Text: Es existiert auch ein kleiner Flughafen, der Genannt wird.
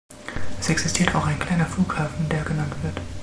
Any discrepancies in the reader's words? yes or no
no